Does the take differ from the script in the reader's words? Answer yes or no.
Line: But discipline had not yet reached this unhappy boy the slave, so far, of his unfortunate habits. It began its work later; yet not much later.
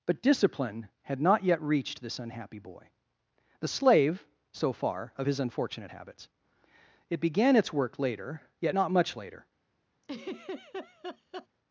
no